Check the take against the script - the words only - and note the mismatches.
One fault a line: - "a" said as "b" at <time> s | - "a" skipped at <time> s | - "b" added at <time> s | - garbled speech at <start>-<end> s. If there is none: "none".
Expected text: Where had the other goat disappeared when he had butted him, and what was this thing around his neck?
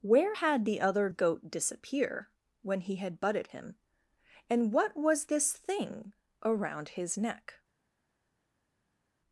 - "disappeared" said as "disappear" at 1.5 s